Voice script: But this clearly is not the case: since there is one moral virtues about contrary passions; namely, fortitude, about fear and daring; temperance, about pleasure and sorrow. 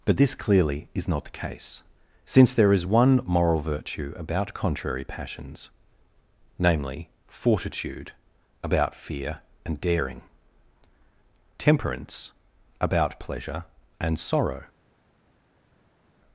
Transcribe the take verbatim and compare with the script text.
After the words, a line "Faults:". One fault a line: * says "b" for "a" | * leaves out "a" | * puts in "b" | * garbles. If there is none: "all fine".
But this clearly is not the case: since there is one moral virtue about contrary passions; namely, fortitude, about fear and daring; temperance, about pleasure and sorrow.
Faults:
* says "virtue" for "virtues"